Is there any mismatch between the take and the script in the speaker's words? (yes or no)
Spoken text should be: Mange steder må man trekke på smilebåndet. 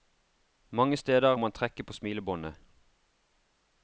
yes